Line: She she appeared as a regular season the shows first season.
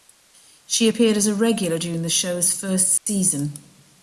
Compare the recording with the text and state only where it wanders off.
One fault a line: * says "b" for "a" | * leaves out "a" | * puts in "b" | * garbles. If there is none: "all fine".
* leaves out "she"
* says "during" for "season"